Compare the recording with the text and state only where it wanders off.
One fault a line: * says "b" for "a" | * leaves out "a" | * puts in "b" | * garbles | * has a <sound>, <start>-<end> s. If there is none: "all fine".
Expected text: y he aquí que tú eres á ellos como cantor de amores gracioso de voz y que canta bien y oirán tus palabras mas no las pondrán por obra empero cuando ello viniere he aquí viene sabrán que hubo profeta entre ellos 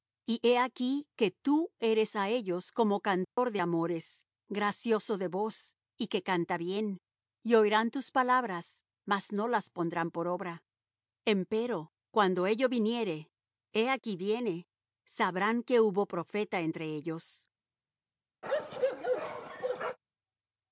* has a dropout, 3.2-3.4 s
* has a bark, 18.4-20.0 s